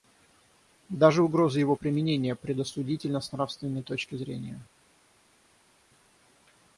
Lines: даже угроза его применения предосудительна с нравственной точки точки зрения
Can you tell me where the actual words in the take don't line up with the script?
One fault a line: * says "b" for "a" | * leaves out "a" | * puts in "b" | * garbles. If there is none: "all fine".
* leaves out "точки"